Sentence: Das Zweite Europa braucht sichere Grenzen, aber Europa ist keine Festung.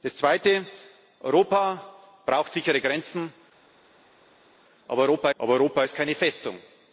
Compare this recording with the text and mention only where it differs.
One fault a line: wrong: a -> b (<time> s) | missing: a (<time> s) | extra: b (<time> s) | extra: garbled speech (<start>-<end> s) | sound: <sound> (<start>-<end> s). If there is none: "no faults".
extra: aber Europa (5.4 s)